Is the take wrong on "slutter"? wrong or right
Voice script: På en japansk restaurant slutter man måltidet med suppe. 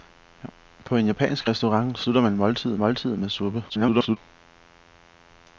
right